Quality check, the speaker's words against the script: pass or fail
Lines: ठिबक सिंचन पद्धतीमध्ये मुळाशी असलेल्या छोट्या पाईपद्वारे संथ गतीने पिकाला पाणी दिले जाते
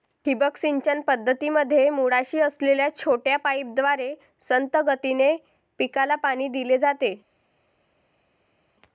pass